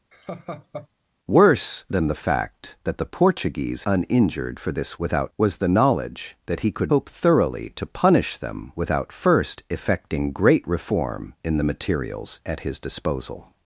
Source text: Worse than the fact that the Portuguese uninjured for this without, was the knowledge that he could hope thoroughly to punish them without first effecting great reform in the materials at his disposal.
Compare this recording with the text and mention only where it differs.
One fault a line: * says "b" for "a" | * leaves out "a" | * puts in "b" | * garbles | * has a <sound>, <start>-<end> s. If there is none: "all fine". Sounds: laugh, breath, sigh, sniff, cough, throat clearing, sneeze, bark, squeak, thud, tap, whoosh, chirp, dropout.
* has a laugh, 0.1-0.9 s